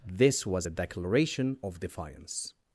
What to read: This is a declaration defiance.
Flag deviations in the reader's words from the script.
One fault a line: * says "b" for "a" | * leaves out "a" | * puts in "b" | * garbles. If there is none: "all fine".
* says "was" for "is"
* puts in "of"